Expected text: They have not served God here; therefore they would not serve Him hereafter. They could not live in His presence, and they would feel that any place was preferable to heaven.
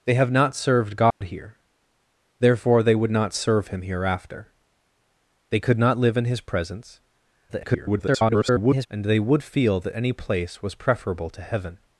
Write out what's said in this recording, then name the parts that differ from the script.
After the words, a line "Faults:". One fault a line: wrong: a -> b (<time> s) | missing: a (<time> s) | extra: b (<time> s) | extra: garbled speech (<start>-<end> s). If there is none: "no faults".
They have not served God here; therefore they would not serve Him hereafter. They could not live in His presence, [garbled] and they would feel that any place was preferable to heaven.
Faults:
extra: garbled speech (7.5-8.9 s)